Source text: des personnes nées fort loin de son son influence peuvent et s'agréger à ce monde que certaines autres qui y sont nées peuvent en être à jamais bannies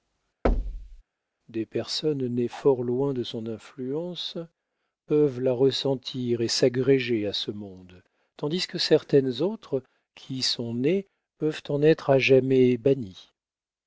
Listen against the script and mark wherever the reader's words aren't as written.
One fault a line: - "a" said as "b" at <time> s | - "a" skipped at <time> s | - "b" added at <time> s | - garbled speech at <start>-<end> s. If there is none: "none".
- "son" skipped at 3.5 s
- "la ressentir" added at 5.4 s
- "tandis" added at 8.4 s